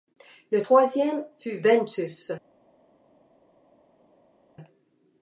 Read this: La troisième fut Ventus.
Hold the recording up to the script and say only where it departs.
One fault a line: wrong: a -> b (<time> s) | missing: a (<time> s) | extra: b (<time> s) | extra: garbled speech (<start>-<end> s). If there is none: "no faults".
wrong: La -> Le (0.5 s)